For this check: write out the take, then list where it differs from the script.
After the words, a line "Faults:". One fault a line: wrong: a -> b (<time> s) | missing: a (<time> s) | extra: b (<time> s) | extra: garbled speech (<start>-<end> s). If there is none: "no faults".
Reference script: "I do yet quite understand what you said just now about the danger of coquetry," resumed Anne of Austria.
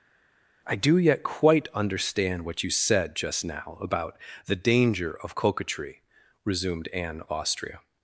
"I do yet quite understand what you said just now about the danger of coquetry," resumed Anne of Austria.
Faults:
no faults